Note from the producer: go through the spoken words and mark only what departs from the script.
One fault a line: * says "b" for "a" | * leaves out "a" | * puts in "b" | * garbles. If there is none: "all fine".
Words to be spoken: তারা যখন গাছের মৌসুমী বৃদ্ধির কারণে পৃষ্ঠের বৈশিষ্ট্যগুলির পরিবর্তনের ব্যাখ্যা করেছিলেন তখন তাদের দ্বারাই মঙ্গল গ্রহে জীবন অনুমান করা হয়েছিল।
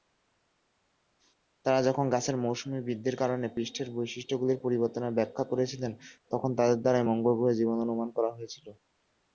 all fine